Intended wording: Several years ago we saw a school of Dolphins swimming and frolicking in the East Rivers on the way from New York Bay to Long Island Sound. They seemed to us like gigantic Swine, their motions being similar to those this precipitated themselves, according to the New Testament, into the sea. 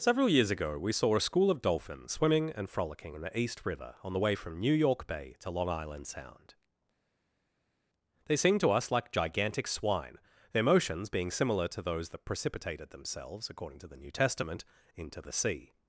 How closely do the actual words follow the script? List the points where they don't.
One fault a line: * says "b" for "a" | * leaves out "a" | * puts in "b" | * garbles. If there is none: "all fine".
* says "River" for "Rivers"
* says "that" for "this"